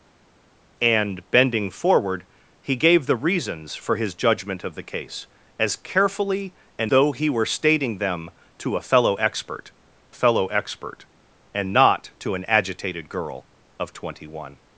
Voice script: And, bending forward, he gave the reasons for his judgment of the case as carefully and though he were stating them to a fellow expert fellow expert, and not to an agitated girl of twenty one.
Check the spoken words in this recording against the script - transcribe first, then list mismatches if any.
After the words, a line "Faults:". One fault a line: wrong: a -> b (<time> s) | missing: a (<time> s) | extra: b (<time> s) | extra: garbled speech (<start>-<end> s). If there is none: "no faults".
And, bending forward, he gave the reasons for his judgment of the case as carefully and though he were stating them to a fellow expert fellow expert, and not to an agitated girl of twenty one.
Faults:
no faults